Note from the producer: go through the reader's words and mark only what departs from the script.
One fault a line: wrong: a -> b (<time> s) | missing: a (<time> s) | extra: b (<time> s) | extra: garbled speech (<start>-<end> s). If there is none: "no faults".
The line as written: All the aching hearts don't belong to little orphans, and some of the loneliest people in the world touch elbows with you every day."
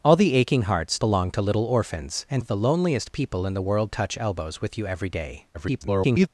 missing: don't (1.0 s)
missing: some (2.4 s)
extra: garbled speech (5.5-6.3 s)